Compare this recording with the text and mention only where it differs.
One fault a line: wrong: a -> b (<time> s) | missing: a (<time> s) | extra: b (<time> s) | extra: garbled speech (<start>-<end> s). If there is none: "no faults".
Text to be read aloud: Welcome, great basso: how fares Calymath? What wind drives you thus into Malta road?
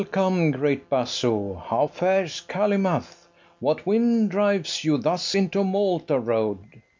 no faults